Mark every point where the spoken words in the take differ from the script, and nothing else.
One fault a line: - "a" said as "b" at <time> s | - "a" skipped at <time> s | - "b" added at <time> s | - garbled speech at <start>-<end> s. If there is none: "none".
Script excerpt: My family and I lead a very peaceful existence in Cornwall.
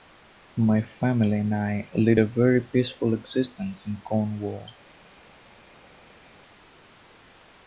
none